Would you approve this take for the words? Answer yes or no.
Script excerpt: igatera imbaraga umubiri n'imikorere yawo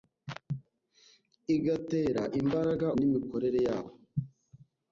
no